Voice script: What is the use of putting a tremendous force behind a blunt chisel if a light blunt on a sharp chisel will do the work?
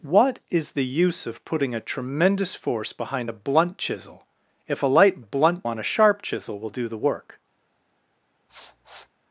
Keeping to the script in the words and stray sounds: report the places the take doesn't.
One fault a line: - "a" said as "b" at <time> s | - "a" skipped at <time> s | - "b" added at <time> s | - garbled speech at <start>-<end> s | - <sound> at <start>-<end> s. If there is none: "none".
- sniff at 8.5-9.1 s